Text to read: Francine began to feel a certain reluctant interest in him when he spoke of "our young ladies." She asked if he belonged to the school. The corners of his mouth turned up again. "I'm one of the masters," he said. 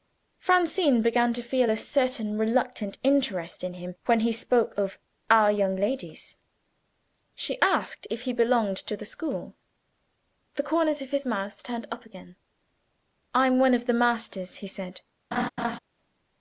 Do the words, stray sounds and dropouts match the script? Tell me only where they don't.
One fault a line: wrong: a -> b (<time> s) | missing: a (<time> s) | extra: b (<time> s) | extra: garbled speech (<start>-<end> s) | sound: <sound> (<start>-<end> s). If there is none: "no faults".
sound: laugh (15.3-15.8 s)